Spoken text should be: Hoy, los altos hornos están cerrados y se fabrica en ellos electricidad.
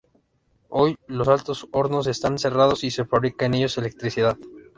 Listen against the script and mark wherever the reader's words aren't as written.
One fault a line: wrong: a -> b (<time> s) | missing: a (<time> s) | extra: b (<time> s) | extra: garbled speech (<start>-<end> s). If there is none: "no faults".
no faults